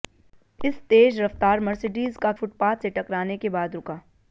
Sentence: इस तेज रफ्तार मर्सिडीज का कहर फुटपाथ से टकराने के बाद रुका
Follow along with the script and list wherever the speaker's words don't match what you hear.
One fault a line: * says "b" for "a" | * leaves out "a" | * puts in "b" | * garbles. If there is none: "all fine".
* leaves out "कहर"